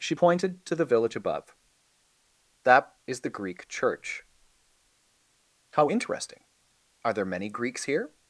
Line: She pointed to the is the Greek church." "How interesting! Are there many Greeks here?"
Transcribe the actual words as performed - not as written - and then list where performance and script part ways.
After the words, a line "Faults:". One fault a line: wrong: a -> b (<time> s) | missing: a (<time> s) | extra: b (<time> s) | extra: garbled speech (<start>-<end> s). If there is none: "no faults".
She pointed to the village above. "That is the Greek church." "How interesting! Are there many Greeks here?"
Faults:
extra: village above That (0.9 s)